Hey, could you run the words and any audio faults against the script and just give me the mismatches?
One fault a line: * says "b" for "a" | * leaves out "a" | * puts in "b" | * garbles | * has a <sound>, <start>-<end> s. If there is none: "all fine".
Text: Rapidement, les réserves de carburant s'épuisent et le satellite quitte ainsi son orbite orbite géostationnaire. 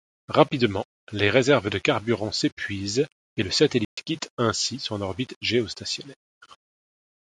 * has a dropout, 3.8-4.0 s
* leaves out "orbite"